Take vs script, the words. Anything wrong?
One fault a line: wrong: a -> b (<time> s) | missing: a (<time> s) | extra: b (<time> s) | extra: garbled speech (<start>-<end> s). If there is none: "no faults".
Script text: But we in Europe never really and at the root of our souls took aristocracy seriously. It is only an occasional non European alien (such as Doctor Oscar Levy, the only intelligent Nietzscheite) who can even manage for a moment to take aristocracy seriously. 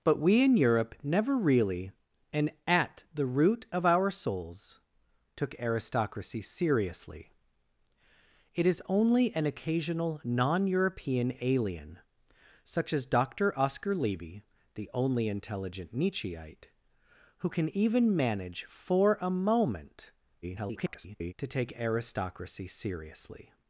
extra: garbled speech (20.4-21.3 s)